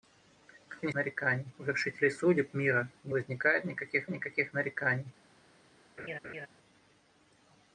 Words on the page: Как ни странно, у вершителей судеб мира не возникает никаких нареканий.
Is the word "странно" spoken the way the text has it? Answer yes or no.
no